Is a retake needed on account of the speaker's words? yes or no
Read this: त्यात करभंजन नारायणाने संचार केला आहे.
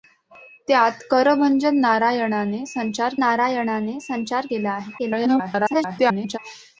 yes